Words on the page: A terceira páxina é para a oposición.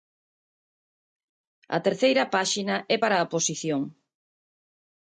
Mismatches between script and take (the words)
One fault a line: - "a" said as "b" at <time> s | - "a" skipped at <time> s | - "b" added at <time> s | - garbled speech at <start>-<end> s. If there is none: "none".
none